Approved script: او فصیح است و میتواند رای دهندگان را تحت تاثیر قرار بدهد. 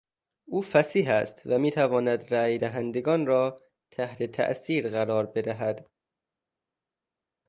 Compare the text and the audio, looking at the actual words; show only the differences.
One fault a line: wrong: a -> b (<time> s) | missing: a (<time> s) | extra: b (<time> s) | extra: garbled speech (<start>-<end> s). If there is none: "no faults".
no faults